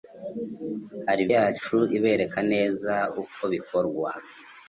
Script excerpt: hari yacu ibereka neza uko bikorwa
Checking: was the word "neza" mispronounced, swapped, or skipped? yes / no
no